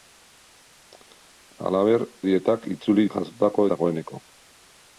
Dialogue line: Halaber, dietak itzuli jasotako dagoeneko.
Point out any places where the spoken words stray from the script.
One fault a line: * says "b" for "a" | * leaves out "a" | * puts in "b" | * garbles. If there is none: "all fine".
all fine